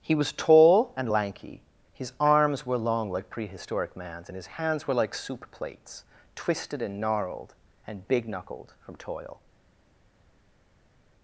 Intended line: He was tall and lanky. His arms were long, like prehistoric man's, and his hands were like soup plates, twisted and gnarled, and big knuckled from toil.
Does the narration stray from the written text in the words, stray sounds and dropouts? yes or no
no